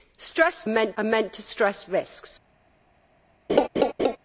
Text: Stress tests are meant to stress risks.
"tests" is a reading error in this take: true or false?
true